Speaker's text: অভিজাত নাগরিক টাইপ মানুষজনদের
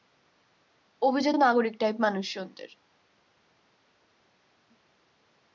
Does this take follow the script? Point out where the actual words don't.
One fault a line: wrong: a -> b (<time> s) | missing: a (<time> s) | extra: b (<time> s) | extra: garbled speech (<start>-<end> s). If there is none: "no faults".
no faults